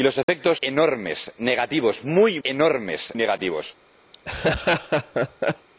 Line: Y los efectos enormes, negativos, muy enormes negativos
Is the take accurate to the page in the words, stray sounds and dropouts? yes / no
no